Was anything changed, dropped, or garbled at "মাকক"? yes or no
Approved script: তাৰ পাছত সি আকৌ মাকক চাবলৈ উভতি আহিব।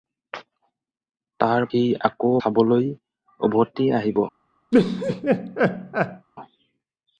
yes